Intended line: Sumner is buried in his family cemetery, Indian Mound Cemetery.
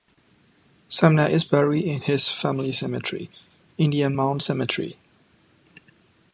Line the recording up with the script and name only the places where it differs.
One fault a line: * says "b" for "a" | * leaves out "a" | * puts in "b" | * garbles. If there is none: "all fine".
all fine